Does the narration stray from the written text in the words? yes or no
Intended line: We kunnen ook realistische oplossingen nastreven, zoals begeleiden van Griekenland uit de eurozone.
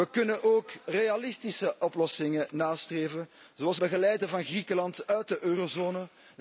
no